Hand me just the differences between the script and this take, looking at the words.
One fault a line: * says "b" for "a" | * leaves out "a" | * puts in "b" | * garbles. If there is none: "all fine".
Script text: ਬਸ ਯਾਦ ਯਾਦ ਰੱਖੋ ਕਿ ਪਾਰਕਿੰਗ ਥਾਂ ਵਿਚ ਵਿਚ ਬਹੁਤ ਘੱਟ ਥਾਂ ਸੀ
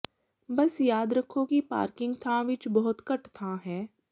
* leaves out "ਯਾਦ"
* leaves out "ਵਿਚ"
* says "ਹੈ" for "ਸੀ"